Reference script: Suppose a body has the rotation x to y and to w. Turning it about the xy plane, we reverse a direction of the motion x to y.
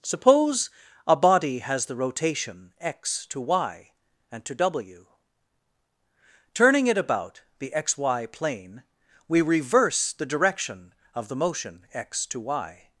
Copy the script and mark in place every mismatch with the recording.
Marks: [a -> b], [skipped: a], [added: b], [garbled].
Suppose a body has the rotation x to y and to w. Turning it about the xy plane, we reverse [a -> the] direction of the motion x to y.